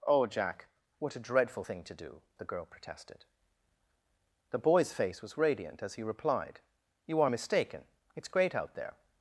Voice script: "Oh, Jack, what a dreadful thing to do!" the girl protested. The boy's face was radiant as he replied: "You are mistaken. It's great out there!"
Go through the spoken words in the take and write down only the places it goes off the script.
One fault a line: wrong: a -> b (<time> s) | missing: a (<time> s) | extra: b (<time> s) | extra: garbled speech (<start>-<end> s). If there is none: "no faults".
no faults